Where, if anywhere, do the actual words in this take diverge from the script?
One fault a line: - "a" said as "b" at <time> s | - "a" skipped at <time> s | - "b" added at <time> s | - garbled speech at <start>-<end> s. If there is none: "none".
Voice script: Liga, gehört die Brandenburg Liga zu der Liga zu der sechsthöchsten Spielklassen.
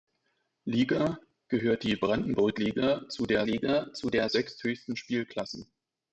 none